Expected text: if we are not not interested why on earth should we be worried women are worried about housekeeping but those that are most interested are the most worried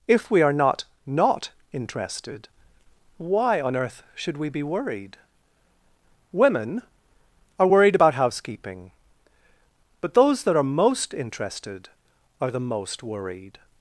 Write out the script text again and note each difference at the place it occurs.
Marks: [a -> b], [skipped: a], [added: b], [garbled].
if we are not not interested why on earth should we be worried women are worried about housekeeping but those that are most interested are the most worried